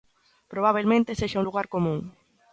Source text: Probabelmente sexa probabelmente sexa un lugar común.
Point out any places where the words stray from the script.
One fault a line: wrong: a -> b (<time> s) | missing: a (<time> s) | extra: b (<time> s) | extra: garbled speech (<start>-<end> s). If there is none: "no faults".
missing: probabelmente sexa (1.4 s)